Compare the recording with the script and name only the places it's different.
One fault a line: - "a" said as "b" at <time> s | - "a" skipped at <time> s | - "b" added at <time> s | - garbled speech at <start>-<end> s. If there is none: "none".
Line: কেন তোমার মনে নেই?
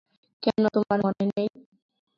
none